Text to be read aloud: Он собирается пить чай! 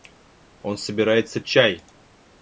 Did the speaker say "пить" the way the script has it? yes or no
no